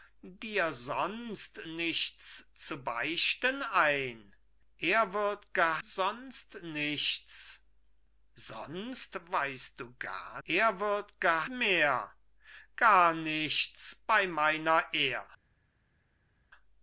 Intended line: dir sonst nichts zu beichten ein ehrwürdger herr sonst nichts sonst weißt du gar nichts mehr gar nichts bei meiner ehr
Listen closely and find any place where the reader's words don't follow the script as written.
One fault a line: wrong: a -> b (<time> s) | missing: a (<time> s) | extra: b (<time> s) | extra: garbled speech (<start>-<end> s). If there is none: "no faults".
missing: herr (5.8 s)
wrong: nichts -> ehrwürdger (10.4 s)